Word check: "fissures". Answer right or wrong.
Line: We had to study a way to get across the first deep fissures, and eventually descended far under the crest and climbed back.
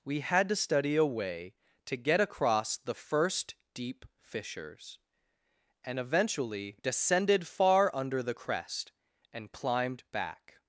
right